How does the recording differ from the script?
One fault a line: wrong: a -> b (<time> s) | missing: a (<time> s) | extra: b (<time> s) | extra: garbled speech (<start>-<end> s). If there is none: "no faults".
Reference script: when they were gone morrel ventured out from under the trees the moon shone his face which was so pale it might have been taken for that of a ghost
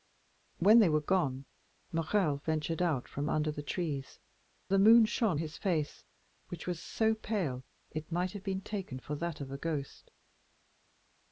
no faults